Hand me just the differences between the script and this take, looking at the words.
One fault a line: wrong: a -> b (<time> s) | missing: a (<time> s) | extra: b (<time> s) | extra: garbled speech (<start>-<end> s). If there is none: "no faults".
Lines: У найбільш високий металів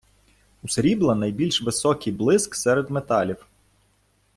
extra: срібла (0.7 s)
extra: блиск серед (2.1 s)